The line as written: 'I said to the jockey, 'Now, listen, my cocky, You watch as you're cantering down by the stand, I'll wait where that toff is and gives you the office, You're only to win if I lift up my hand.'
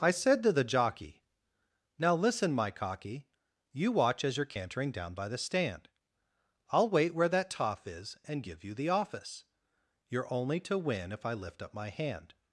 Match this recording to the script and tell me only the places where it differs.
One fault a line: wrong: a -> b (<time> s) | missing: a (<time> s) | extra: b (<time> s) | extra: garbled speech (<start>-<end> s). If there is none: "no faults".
wrong: gives -> give (8.4 s)